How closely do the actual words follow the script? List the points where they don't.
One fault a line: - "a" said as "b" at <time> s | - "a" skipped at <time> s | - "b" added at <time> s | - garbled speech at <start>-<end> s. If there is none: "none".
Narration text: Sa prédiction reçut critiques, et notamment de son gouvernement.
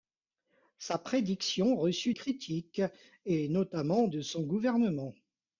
none